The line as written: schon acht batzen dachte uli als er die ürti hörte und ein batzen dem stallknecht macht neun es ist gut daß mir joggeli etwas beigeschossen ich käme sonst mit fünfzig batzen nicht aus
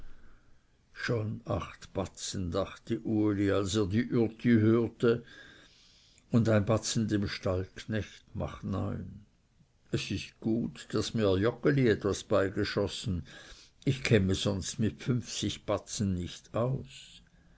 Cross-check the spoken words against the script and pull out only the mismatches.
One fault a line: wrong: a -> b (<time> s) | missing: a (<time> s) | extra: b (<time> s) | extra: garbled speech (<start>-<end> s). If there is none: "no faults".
no faults